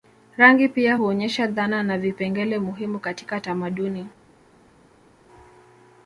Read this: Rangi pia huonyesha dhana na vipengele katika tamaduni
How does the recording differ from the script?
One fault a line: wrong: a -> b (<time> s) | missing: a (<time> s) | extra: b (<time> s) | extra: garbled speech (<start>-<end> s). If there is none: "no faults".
extra: muhimu (2.6 s)